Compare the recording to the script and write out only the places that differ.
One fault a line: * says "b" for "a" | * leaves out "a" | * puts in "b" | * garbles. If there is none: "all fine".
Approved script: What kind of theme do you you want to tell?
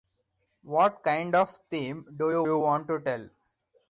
all fine